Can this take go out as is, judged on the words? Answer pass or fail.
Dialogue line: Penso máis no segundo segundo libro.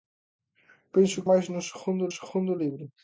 pass